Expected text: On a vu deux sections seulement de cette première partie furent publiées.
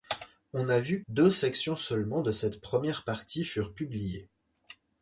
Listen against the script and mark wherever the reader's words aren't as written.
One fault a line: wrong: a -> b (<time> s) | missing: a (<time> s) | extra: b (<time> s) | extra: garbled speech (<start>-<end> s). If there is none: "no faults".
no faults